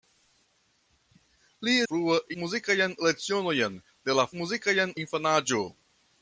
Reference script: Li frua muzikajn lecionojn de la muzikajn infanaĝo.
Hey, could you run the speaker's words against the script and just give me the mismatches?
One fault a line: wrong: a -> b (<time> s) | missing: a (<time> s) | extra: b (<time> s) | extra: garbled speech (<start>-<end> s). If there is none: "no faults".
no faults